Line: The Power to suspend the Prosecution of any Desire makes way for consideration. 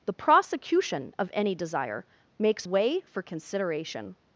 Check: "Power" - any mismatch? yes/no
yes